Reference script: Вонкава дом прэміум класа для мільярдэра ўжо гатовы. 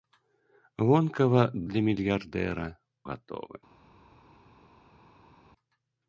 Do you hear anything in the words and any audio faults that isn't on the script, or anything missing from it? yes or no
yes